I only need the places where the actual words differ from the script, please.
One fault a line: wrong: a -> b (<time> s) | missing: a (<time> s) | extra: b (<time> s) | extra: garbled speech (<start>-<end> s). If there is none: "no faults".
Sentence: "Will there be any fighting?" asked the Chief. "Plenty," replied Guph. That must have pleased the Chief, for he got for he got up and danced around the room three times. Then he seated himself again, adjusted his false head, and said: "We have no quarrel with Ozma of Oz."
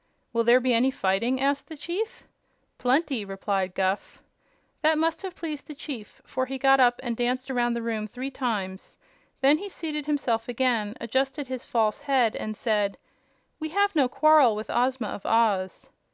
missing: for he got (6.8 s)